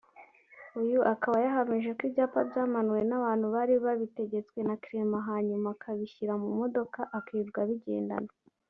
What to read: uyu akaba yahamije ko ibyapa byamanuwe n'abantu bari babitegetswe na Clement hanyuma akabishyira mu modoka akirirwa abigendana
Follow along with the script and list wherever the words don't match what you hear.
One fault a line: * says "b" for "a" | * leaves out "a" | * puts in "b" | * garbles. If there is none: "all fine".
all fine